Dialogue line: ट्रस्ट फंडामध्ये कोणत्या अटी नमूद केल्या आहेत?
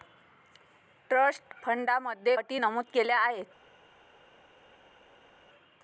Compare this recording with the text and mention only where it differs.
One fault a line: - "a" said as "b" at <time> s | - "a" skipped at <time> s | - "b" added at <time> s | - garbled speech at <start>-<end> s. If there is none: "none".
- "कोणत्या" skipped at 2.4 s